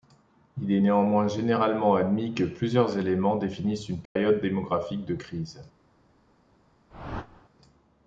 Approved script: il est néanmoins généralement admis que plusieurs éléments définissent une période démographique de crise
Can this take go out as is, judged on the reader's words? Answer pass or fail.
pass